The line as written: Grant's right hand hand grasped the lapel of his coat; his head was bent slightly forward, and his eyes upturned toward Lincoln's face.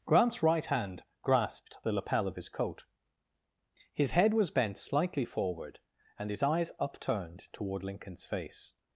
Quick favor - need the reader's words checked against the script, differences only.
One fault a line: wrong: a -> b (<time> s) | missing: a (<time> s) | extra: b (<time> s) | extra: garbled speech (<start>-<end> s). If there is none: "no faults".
missing: hand (1.0 s)